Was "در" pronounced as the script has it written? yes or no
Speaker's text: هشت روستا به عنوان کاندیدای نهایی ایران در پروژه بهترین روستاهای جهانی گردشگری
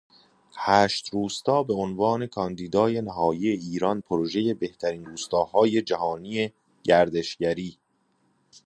no